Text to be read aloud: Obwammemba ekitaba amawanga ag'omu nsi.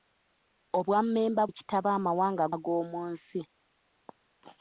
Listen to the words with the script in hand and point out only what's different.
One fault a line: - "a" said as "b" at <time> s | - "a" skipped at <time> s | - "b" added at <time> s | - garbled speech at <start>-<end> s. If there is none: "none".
none